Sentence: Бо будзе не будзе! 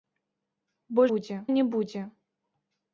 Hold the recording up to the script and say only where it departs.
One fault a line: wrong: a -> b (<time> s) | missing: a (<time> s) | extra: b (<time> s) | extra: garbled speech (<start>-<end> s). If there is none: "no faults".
no faults